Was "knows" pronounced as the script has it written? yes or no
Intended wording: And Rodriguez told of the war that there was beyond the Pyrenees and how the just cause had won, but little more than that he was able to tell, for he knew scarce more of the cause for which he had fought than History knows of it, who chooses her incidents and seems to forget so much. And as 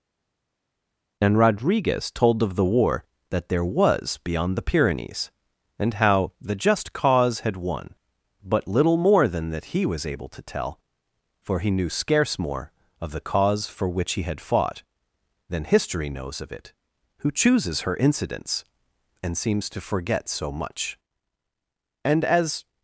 yes